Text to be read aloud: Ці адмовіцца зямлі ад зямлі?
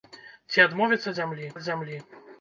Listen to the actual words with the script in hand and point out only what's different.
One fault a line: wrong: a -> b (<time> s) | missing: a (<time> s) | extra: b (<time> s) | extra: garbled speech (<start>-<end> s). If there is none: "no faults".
no faults